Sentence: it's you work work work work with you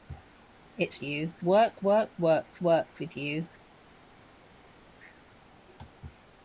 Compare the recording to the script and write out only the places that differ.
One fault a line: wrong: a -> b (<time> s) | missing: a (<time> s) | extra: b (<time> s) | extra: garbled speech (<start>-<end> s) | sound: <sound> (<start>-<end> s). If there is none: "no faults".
no faults